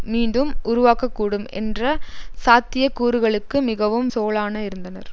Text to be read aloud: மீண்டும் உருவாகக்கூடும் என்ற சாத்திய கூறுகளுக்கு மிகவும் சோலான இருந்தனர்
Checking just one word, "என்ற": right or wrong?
right